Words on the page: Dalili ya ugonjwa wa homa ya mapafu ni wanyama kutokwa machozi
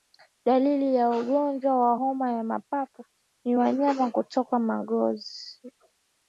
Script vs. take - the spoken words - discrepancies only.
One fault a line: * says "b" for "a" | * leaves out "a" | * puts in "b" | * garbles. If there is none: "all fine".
all fine